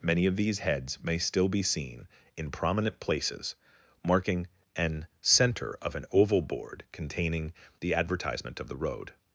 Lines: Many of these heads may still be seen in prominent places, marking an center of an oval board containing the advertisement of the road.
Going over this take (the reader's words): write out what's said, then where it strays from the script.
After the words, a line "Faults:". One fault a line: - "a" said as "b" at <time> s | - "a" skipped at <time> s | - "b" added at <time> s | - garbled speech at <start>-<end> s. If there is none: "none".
Many of these heads may still be seen in prominent places, marking an center of an oval board containing the advertisement of the road.
Faults:
none